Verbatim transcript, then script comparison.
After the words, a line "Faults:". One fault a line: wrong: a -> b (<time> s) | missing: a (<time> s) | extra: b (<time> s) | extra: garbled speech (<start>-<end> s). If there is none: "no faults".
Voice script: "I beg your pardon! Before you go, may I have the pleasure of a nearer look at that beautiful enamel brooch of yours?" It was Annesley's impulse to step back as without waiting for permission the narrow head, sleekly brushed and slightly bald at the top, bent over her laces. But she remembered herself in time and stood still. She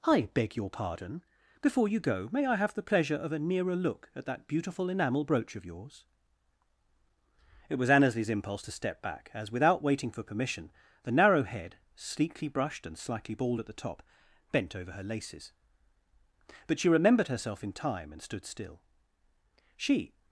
"I beg your pardon! Before you go, may I have the pleasure of a nearer look at that beautiful enamel brooch of yours?" It was Annesley's impulse to step back as without waiting for permission the narrow head, sleekly brushed and slightly bald at the top, bent over her laces. But she remembered herself in time and stood still. She
Faults:
no faults